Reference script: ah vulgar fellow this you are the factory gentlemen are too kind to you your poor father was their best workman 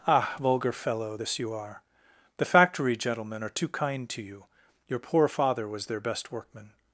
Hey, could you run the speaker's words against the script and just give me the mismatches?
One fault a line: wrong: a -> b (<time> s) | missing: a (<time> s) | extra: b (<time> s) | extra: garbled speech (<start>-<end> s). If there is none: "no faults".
no faults